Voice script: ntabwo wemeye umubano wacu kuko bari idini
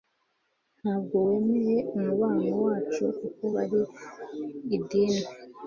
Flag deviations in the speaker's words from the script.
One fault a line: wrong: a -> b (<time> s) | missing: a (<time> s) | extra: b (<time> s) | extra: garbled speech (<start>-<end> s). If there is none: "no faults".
no faults